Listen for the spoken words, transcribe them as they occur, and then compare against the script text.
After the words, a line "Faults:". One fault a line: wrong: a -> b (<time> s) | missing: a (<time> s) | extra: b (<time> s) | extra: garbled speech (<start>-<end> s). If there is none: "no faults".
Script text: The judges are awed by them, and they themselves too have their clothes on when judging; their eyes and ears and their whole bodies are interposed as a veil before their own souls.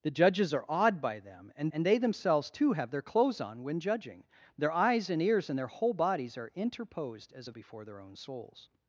The judges are awed by them, and and they themselves too have their clothes on when judging; their eyes and ears and their whole bodies are interposed as a before their own souls.
Faults:
extra: and (1.7 s)
missing: veil (7.5 s)